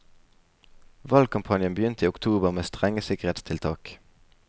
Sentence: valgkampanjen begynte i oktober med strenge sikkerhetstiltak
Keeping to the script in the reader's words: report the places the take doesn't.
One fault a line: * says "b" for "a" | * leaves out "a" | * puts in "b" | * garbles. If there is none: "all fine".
all fine